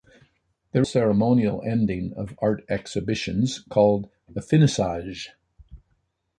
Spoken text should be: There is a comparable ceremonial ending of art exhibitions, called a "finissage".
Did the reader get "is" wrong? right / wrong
wrong